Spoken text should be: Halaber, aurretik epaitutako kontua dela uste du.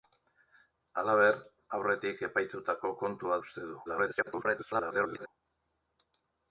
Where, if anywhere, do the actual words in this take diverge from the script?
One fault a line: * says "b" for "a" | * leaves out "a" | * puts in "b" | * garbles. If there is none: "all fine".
* leaves out "dela"
* garbles